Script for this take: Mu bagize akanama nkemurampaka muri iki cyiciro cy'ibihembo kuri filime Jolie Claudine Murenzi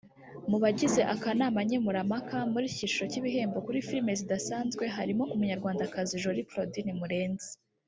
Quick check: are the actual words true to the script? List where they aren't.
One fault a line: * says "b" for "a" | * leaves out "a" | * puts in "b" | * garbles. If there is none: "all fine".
* puts in "zidasanzwe harimo Umunyarwandakazi"